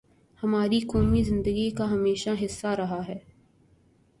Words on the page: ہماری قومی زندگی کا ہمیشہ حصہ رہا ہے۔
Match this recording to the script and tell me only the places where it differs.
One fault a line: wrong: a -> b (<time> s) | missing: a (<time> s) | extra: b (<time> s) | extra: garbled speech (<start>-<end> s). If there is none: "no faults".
no faults